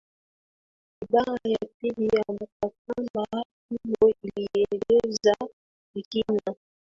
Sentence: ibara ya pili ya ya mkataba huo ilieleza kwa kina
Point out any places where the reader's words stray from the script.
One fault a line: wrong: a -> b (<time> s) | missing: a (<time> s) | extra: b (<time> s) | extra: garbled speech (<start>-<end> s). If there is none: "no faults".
missing: ya (2.2 s)